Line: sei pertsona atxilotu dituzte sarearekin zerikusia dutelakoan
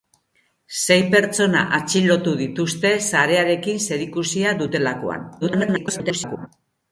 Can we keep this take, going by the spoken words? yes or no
no